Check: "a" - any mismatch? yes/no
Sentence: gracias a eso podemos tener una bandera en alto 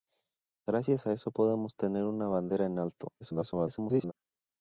no